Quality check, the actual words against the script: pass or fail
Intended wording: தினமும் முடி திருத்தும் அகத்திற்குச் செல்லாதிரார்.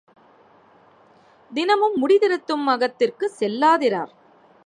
pass